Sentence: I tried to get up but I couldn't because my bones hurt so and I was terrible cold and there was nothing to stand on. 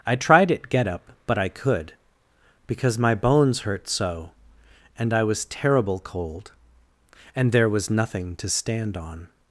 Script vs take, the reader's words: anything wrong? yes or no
yes